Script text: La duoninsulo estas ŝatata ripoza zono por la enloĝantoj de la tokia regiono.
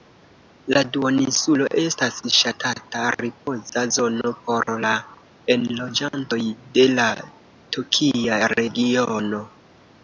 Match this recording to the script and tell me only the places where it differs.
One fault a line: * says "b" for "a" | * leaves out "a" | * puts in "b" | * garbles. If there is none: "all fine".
all fine